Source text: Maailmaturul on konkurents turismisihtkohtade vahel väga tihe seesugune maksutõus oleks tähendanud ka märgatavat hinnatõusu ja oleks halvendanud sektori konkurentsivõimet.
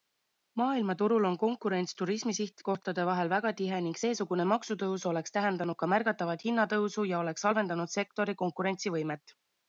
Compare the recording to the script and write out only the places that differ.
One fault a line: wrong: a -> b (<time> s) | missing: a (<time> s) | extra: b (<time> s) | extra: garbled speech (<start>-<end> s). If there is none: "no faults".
extra: ning (3.9 s)